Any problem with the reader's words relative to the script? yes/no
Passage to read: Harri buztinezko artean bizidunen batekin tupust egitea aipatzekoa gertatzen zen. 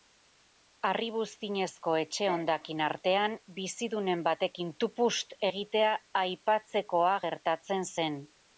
yes